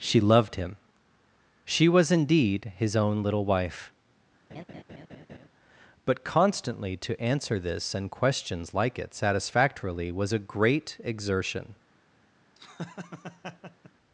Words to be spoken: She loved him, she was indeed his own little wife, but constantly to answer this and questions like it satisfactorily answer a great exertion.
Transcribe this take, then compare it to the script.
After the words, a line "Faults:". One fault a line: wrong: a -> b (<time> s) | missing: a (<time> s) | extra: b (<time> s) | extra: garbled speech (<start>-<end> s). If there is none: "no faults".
She loved him, she was indeed his own little wife, but constantly to answer this and questions like it satisfactorily was a great exertion.
Faults:
wrong: answer -> was (10.1 s)